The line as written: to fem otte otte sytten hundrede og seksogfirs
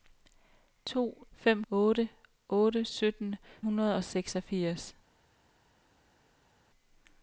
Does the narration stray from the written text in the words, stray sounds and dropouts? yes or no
no